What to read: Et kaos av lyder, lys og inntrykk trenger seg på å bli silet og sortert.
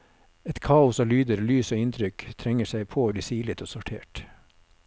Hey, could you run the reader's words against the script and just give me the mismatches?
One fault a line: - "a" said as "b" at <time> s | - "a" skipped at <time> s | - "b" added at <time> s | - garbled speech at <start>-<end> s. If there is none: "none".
none